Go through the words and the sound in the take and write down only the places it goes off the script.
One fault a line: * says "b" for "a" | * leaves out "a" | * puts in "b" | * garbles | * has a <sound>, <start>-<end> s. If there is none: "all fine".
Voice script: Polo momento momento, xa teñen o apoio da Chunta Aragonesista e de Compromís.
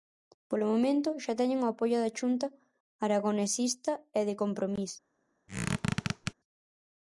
* leaves out "momento"
* has a squeak, 5.5-6.3 s